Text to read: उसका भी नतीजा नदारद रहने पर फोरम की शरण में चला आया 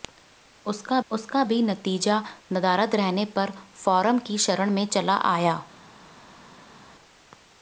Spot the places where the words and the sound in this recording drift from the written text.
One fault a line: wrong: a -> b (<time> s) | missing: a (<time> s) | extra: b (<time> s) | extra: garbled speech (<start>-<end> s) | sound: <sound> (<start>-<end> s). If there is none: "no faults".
extra: उसका (1.1 s)